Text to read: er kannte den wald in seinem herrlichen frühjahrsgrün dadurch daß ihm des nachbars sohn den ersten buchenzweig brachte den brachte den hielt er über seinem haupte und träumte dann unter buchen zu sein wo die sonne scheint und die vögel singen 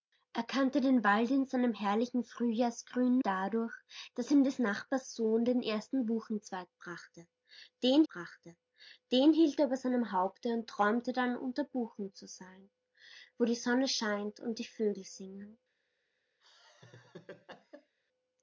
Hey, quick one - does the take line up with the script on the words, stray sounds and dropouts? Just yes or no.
no